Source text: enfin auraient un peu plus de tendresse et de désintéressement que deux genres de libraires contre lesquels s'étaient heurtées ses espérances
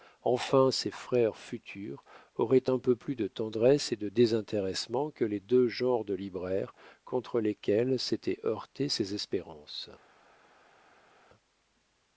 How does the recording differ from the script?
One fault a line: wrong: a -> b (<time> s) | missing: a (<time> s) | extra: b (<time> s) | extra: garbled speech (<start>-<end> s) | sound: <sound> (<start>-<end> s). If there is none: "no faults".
extra: ses frères futurs (0.7 s)
extra: les (5.2 s)